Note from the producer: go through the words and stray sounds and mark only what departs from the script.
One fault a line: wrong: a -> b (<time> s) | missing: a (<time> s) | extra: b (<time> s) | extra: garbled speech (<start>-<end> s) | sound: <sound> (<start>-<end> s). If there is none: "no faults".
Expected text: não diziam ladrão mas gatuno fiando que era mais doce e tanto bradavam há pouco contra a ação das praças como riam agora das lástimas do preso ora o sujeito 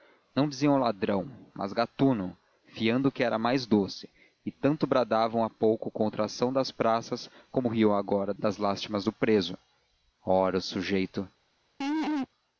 sound: laugh (11.8-12.3 s)